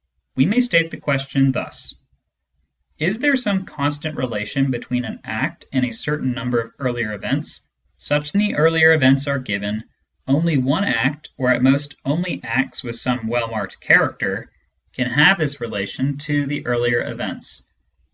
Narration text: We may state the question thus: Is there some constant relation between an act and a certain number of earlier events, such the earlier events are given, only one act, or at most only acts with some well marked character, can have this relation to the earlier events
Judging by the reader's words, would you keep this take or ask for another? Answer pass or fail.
pass